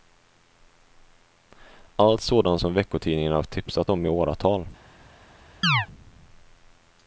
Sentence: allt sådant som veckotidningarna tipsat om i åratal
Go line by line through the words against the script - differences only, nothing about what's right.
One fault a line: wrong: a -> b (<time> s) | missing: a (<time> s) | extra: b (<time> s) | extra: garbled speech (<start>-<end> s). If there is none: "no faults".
no faults